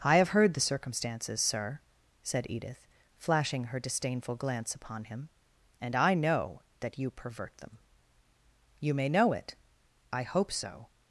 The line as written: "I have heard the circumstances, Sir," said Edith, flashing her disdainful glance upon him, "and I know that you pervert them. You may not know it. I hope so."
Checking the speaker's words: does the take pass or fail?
fail